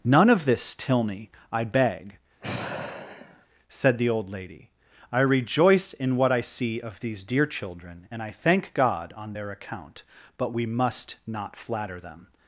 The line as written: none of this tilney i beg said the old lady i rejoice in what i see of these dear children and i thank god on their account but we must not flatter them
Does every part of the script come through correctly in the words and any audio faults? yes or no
no